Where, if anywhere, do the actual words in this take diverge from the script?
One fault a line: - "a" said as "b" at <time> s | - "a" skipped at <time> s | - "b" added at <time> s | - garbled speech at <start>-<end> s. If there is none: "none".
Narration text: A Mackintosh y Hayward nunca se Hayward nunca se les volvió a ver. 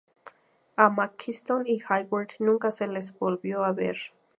- "Hayward nunca se" skipped at 2.9 s